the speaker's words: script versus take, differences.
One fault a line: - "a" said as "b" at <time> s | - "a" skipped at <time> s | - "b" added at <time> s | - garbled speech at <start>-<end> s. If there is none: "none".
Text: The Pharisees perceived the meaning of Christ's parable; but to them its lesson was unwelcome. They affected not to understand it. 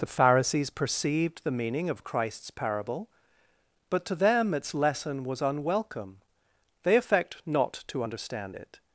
- "affected" said as "affect" at 7.0 s